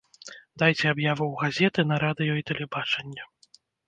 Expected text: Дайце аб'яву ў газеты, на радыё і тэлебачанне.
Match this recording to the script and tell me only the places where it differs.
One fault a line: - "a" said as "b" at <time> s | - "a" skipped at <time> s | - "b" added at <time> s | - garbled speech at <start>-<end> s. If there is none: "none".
none